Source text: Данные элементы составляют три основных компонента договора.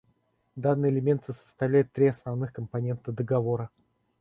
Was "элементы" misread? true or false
false